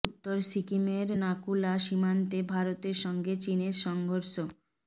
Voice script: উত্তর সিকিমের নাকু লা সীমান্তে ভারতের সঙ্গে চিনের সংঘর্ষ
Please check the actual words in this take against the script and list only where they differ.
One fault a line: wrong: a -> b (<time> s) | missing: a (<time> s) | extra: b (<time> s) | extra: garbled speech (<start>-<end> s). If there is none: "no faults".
no faults